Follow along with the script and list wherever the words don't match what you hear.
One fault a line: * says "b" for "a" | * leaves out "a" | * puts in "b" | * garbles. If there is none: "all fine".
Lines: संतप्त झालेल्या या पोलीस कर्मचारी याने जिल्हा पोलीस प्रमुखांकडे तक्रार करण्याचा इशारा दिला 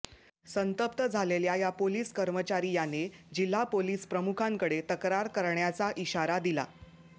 all fine